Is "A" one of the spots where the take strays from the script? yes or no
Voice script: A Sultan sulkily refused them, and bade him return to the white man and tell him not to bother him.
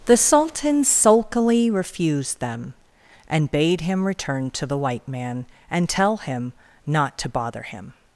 yes